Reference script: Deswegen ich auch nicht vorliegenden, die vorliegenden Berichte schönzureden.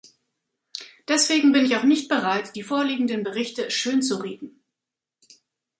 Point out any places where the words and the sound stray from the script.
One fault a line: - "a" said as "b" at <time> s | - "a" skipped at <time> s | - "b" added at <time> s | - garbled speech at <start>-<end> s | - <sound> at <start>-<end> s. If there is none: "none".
- "bin" added at 1.5 s
- "vorliegenden" said as "bereit" at 2.1 s